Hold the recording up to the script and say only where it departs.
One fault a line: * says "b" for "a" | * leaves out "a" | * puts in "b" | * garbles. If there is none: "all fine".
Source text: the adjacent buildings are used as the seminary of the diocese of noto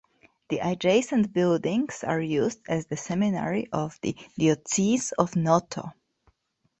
all fine